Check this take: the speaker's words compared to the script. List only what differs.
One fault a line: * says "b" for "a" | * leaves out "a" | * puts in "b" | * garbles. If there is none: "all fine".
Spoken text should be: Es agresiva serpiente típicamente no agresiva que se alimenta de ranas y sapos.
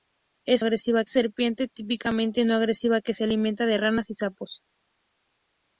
all fine